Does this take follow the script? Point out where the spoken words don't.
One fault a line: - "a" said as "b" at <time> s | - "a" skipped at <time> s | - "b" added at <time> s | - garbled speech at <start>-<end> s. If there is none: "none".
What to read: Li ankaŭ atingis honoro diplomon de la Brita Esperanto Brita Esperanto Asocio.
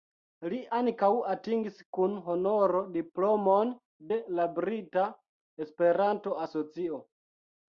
- "kun" added at 2.0 s
- "Brita Esperanto" skipped at 6.4 s